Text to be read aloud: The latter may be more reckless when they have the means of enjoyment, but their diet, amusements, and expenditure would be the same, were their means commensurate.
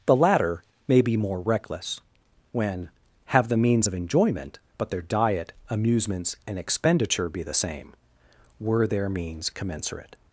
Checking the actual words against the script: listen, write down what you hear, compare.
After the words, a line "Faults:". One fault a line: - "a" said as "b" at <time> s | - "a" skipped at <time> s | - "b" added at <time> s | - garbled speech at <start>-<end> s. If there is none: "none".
The latter may be more reckless when have the means of enjoyment, but their diet, amusements, and expenditure be the same, were their means commensurate.
Faults:
- "they" skipped at 2.9 s
- "would" skipped at 7.3 s